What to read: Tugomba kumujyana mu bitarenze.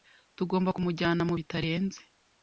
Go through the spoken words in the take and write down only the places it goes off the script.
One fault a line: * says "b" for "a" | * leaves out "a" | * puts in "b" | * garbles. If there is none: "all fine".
all fine